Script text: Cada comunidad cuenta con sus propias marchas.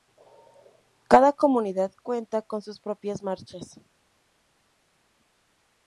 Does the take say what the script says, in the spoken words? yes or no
yes